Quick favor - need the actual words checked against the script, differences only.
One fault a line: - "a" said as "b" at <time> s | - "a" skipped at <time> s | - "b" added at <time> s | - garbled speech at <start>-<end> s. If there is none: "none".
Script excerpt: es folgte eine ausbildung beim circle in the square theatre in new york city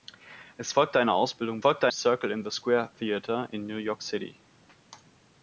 - "beim" said as "folgte" at 1.6 s